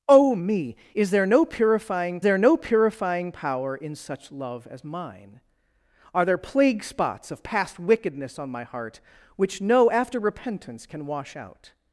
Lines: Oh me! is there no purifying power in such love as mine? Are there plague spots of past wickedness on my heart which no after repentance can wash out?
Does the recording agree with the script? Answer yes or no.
no